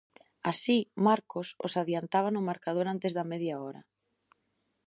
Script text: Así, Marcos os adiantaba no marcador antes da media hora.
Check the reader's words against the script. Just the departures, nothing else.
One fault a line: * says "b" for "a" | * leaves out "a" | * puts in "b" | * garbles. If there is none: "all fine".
all fine